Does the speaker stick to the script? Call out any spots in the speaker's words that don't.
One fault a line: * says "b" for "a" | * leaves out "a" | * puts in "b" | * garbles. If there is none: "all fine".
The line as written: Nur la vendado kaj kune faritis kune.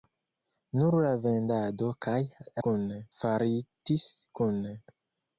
all fine